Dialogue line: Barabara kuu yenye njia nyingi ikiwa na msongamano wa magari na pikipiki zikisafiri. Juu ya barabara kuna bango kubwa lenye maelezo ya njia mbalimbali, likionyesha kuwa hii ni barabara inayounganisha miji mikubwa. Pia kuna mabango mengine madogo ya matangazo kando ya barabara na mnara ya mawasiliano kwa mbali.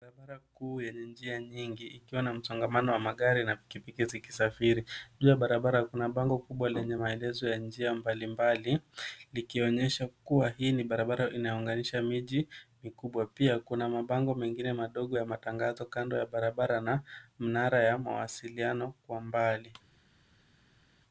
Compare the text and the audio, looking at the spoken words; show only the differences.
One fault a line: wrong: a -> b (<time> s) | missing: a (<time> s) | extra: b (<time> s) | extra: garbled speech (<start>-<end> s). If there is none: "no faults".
no faults